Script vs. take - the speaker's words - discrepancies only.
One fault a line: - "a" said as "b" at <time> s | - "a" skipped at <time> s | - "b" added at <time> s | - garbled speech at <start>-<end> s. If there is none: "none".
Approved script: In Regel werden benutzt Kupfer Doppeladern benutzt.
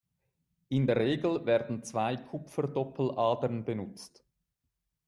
- "der" added at 0.8 s
- "benutzt" said as "zwei" at 1.8 s